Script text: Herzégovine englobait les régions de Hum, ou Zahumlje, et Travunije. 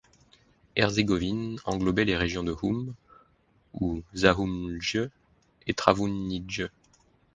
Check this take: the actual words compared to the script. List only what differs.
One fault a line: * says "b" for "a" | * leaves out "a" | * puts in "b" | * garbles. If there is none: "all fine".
all fine